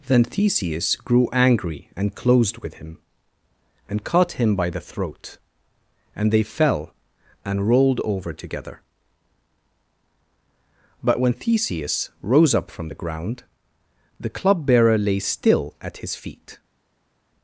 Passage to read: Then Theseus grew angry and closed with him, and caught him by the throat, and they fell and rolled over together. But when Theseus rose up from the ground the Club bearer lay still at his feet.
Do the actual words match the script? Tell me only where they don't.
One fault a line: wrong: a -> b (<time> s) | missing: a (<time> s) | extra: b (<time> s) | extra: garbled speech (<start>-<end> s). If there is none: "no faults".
no faults